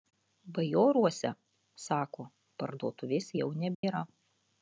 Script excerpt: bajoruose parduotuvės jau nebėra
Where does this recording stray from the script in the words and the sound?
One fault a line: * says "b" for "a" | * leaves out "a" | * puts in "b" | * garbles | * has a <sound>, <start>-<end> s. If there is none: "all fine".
* puts in "sako"
* has a dropout, 3.7-3.8 s